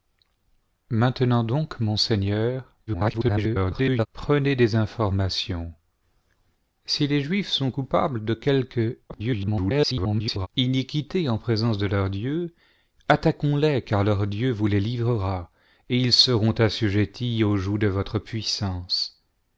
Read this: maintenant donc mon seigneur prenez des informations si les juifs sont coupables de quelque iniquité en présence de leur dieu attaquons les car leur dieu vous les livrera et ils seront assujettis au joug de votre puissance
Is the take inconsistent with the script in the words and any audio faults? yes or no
yes